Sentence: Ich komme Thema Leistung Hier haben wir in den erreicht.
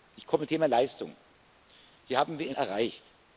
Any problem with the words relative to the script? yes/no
no